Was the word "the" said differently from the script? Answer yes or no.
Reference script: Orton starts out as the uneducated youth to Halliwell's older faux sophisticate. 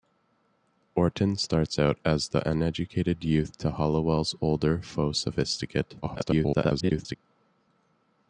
no